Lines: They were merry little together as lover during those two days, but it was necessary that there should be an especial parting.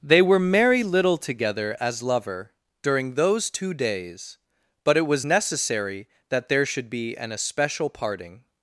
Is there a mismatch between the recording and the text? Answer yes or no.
no